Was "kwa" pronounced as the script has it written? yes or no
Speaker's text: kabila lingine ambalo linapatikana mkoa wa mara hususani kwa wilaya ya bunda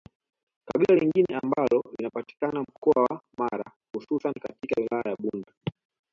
no